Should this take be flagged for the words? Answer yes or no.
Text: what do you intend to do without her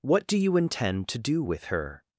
yes